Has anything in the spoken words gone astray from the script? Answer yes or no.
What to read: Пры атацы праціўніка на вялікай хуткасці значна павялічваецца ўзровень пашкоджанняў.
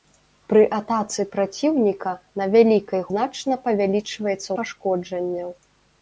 yes